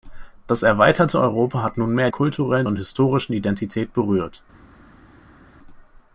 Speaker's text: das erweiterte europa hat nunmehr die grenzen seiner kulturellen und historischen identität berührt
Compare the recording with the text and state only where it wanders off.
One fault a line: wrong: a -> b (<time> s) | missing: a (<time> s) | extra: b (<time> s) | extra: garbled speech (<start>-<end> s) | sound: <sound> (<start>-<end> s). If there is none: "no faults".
missing: die grenzen seiner (2.1 s)